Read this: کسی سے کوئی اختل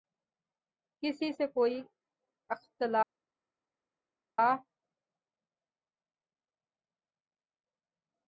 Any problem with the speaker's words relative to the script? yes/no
no